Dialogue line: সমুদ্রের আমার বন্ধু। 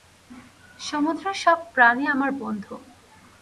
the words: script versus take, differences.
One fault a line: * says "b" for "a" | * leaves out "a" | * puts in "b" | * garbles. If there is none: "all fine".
* puts in "সব প্রাণী"